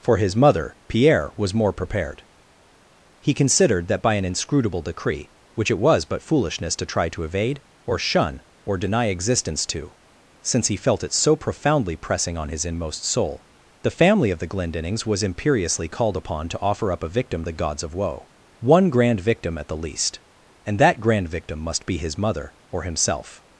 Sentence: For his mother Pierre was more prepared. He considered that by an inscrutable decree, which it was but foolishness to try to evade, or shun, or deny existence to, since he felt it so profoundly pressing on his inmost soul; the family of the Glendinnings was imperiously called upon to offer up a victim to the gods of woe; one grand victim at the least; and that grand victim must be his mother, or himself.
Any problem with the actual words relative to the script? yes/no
yes